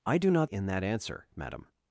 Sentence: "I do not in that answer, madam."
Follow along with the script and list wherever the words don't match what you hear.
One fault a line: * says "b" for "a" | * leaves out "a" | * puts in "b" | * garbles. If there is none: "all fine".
all fine